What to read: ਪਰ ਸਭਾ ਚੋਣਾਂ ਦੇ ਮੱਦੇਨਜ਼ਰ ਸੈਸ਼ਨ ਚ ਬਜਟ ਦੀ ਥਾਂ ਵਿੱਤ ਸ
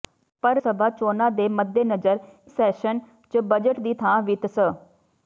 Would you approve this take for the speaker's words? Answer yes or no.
yes